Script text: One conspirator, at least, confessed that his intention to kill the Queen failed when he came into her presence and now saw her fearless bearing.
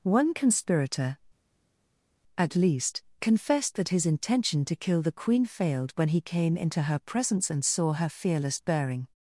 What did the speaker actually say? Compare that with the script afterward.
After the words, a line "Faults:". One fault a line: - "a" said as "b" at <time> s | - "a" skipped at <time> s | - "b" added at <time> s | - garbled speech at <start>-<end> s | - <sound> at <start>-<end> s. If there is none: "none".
One conspirator, at least, confessed that his intention to kill the Queen failed when he came into her presence and saw her fearless bearing.
Faults:
- "now" skipped at 7.6 s